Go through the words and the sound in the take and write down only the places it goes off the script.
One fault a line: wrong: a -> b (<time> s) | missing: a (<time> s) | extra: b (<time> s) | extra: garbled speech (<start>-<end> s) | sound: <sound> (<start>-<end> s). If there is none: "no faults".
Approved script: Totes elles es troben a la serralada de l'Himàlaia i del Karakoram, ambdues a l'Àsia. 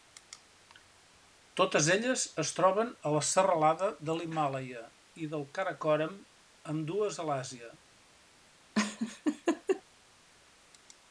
sound: laugh (8.7-9.8 s)